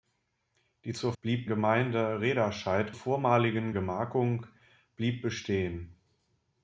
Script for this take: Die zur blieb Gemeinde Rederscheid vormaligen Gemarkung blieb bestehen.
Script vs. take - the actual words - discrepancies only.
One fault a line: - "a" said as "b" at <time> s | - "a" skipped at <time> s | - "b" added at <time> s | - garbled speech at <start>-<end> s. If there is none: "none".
none